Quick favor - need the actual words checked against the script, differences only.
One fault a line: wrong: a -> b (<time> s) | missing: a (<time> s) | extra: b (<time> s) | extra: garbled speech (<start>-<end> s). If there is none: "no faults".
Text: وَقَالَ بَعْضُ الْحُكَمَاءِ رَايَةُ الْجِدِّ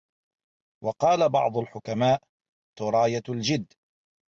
no faults